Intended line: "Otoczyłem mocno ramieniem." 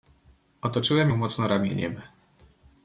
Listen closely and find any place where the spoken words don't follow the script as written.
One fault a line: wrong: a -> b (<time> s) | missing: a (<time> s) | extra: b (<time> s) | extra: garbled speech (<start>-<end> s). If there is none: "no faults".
extra: ją (1.0 s)